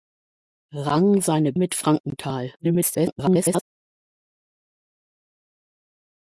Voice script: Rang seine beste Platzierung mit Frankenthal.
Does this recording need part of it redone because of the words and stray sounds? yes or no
yes